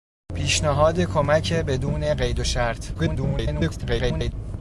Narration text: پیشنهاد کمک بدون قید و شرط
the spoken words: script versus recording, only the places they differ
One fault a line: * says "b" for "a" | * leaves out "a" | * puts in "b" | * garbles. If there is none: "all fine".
* garbles